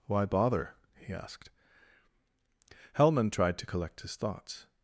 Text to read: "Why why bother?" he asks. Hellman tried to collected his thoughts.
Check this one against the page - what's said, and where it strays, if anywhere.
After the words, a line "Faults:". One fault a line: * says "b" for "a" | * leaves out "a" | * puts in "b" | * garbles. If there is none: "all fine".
"Why bother?" he asked. Hellman tried to collect his thoughts.
Faults:
* leaves out "why"
* says "asked" for "asks"
* says "collect" for "collected"